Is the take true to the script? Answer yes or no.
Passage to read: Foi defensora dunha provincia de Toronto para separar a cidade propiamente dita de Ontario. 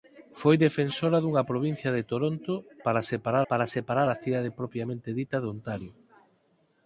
no